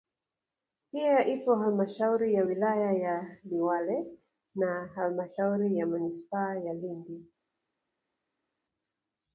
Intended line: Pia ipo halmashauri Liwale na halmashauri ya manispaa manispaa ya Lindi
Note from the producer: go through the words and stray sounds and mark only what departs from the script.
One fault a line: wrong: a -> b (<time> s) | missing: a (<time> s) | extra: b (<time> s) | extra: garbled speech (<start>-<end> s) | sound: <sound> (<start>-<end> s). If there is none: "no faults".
extra: ya wilaya ya (2.3 s)
missing: manispaa (6.6 s)